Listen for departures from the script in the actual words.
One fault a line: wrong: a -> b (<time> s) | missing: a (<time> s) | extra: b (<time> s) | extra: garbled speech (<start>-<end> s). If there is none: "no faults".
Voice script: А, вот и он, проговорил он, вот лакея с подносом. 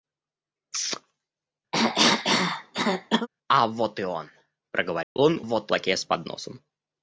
no faults